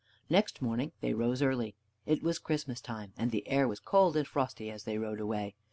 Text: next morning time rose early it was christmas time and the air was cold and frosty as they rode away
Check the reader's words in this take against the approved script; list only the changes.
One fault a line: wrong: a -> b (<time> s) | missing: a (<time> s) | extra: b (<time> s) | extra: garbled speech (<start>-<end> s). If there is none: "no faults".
wrong: time -> they (1.0 s)